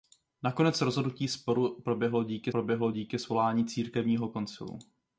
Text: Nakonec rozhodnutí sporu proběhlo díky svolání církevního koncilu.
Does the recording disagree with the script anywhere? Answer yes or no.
yes